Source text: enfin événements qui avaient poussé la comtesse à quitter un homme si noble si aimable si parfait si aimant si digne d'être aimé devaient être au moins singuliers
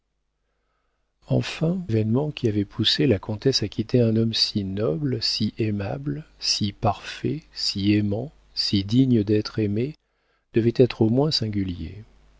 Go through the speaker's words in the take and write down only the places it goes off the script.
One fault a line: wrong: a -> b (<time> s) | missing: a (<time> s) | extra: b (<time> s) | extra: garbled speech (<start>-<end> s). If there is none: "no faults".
no faults